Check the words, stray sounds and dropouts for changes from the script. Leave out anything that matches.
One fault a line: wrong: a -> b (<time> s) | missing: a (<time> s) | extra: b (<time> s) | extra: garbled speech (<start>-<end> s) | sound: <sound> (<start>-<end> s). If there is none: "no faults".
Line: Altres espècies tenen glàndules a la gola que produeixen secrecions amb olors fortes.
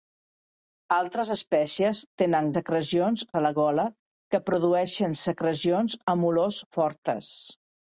wrong: glàndules -> secrecions (2.5 s)